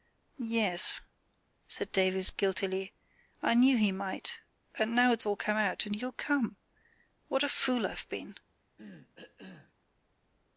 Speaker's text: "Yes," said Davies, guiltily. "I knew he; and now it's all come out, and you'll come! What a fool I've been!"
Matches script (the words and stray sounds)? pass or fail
fail